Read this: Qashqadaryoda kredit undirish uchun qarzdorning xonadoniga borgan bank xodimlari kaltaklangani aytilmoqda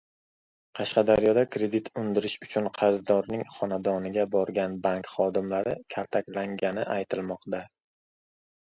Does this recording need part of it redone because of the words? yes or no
no